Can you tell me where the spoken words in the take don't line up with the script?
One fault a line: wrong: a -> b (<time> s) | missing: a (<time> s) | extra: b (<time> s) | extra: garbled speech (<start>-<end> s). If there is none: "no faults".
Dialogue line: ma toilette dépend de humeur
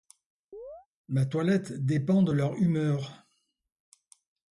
extra: leur (2.3 s)